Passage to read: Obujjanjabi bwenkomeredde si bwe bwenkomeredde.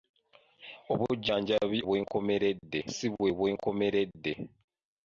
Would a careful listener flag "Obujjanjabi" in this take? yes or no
no